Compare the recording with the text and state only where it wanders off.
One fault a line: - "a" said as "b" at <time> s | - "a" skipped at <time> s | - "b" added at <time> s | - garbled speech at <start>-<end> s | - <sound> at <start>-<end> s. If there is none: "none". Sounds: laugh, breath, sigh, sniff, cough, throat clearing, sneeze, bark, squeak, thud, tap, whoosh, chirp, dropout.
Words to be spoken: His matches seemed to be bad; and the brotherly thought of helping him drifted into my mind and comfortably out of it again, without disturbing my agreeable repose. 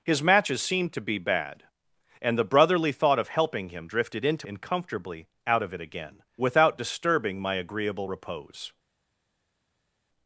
- "my mind" skipped at 4.5 s